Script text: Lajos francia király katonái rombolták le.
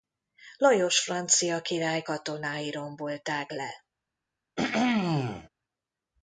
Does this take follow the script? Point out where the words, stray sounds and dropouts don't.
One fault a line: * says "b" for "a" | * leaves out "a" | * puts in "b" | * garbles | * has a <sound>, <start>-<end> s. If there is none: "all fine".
* has a throat clearing, 4.6-5.5 s